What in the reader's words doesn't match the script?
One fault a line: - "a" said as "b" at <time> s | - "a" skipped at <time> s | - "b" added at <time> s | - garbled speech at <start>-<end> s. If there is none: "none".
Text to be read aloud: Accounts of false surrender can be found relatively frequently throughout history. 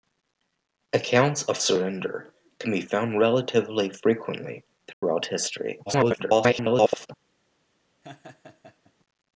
- "false" skipped at 1.6 s
- garbled speech at 5.9-7.1 s